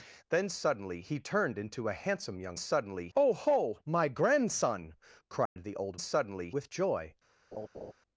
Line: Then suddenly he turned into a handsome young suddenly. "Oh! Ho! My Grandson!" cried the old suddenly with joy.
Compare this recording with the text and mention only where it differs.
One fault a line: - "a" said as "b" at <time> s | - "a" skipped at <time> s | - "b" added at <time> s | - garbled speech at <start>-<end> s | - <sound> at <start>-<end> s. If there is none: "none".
- dropout at 5.5-5.6 s
- laugh at 7.5-7.9 s